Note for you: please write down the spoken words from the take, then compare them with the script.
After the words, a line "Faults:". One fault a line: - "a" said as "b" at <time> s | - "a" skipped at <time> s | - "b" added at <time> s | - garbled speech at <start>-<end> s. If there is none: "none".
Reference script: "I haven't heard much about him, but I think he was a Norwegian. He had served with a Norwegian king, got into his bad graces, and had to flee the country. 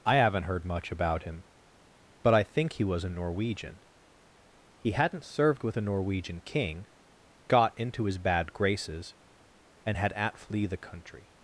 "I haven't heard much about him, but I think he was a Norwegian. He hadn't served with a Norwegian king, got into his bad graces, and had at flee the country.
Faults:
- "had" said as "hadn't" at 4.9 s
- "to" said as "at" at 10.1 s